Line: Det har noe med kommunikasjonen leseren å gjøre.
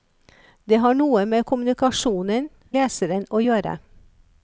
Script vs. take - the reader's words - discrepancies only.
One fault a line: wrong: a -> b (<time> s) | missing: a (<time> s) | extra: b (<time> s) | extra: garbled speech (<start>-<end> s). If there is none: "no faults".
no faults